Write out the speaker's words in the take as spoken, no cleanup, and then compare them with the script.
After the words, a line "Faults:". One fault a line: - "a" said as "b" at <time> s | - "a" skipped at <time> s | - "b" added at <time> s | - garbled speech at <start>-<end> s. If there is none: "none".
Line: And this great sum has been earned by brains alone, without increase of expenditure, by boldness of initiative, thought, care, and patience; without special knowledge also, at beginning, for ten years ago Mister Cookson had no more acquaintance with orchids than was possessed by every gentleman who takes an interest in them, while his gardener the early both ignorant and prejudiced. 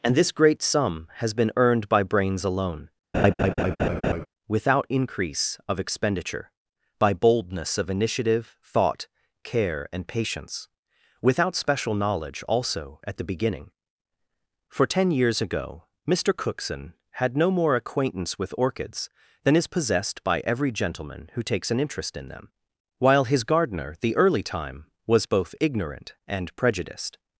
And this great sum has been earned by brains alone, without increase of expenditure, by boldness of initiative, thought, care, and patience; without special knowledge also, at the beginning, for ten years ago Mister Cookson had no more acquaintance with orchids than is possessed by every gentleman who takes an interest in them, while his gardener the early time was both ignorant and prejudiced.
Faults:
- "the" added at 13.2 s
- "was" said as "is" at 19.5 s
- "time was" added at 24.4 s